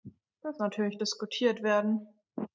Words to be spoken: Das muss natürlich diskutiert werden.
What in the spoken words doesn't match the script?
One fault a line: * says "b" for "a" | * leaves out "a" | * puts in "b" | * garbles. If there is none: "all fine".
* leaves out "muss"